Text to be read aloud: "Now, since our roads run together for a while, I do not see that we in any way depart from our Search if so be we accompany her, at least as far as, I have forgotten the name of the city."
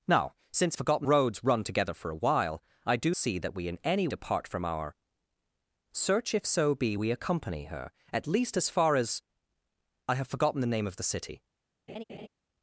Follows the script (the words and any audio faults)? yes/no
no